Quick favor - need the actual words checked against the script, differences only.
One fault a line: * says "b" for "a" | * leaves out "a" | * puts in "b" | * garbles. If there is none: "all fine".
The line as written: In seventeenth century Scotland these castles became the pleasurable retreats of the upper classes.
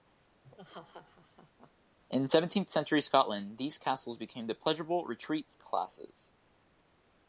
* leaves out "of the upper"